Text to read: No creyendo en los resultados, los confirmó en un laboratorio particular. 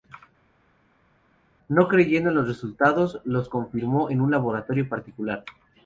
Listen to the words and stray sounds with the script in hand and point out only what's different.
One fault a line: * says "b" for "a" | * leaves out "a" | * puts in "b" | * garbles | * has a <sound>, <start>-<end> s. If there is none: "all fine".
all fine